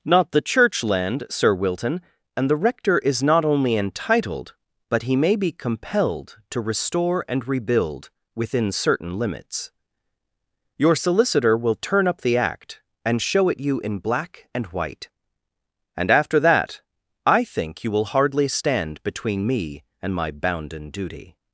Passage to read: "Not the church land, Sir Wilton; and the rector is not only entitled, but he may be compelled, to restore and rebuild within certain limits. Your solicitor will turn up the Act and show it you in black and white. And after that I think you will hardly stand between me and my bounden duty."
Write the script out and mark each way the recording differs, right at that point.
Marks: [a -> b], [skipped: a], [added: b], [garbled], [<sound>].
"Not the church land, Sir Wilton; and the rector is not only entitled, but he may be compelled, to restore and rebuild within certain limits. Your solicitor will turn up the Act and show it you in black and white. And after that I think you will hardly stand between me and my bounden duty."